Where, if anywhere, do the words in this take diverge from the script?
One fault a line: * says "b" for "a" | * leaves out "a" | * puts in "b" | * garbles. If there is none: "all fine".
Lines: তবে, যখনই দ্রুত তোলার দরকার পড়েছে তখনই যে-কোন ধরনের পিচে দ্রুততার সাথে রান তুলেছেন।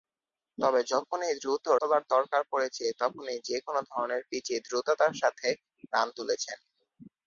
all fine